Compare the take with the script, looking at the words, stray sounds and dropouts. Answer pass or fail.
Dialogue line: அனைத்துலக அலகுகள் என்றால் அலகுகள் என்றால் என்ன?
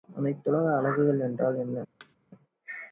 fail